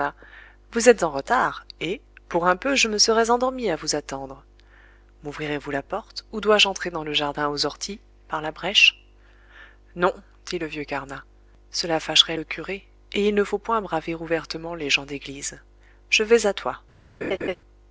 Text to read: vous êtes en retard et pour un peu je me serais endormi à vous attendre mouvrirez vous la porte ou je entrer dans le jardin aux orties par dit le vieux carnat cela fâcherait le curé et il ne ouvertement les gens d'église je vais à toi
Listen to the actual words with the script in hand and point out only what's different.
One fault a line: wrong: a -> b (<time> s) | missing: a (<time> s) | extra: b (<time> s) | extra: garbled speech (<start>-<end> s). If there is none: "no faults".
extra: dois (6.4 s)
extra: la brèche non (8.4 s)
extra: faut point braver (13.4 s)